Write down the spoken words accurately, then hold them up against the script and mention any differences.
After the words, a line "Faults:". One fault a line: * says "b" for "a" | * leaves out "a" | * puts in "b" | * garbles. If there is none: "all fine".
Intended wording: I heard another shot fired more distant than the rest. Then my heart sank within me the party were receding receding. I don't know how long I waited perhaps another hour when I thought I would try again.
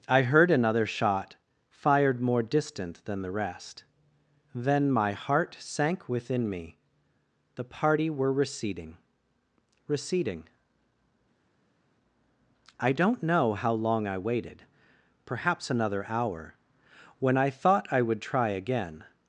I heard another shot fired more distant than the rest. Then my heart sank within me the party were receding receding. I don't know how long I waited perhaps another hour when I thought I would try again.
Faults:
all fine